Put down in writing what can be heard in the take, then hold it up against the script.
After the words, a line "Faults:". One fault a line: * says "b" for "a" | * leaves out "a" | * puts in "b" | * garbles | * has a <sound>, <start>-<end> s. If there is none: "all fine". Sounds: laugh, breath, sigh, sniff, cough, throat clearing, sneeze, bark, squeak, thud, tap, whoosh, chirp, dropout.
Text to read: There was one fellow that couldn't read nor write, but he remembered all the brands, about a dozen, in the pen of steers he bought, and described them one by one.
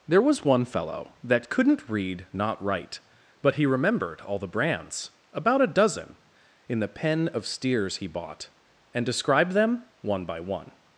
There was one fellow that couldn't read not write, but he remembered all the brands, about a dozen, in the pen of steers he bought, and described them one by one.
Faults:
* says "not" for "nor"